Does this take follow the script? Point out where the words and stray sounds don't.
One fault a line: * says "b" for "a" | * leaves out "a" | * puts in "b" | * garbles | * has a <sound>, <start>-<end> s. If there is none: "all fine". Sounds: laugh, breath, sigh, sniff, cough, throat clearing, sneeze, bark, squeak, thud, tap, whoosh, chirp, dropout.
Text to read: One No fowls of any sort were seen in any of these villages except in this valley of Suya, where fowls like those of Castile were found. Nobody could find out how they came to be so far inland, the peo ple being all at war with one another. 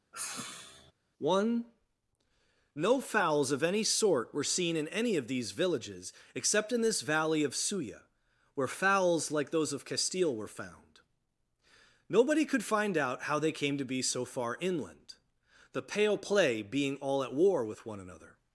* has a sigh, 0.1-0.9 s
* says "pale play" for "peo ple"